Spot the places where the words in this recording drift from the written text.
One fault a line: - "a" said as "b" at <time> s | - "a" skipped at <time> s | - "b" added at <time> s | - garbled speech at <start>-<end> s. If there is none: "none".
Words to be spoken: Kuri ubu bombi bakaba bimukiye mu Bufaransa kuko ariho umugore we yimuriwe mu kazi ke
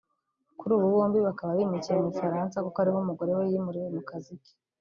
none